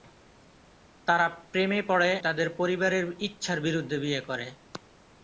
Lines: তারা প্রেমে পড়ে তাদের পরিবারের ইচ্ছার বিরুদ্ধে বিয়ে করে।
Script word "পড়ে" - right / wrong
right